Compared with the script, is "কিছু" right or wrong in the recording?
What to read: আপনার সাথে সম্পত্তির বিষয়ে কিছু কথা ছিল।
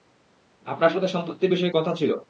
wrong